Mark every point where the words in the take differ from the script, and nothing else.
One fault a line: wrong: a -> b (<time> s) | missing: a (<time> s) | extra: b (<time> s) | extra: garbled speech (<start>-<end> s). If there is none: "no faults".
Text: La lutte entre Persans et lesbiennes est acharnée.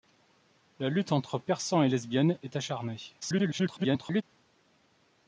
extra: garbled speech (3.2-4.2 s)